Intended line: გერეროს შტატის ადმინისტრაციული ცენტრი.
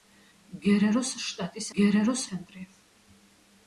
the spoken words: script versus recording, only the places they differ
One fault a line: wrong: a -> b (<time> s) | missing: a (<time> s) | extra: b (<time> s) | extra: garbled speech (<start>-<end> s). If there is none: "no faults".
wrong: ადმინისტრაციული -> გერეროს (1.8 s)